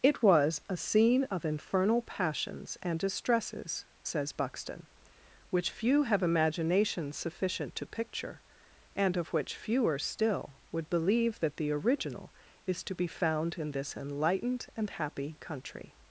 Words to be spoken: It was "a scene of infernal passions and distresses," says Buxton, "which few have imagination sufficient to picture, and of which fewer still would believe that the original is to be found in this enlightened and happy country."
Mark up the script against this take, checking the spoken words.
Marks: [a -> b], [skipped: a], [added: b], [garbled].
It was "a scene of infernal passions and distresses," says Buxton, "which few have imagination sufficient to picture, and of which fewer still would believe that the original is to be found in this enlightened and happy country."